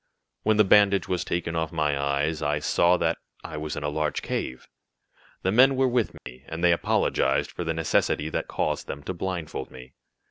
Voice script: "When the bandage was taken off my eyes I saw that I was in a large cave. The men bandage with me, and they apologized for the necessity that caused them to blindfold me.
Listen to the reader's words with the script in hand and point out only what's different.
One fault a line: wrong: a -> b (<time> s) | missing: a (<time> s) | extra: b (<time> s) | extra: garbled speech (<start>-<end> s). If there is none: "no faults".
wrong: bandage -> were (5.8 s)